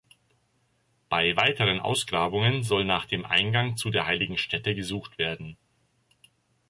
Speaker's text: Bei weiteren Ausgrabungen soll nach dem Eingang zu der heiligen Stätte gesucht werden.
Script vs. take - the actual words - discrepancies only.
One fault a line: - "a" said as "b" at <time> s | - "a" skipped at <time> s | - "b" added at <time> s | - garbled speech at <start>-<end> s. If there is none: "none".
none